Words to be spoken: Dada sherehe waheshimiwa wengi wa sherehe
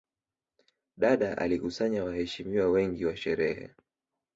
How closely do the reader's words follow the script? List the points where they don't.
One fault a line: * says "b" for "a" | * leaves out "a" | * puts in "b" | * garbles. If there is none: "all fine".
* says "alikusanya" for "sherehe"